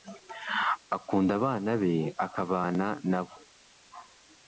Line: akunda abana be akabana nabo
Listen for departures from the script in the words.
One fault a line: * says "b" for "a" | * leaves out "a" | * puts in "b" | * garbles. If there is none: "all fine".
all fine